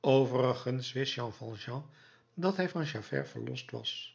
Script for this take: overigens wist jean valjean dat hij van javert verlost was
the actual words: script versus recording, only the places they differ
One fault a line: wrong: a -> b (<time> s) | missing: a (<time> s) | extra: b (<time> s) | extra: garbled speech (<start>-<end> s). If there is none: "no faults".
no faults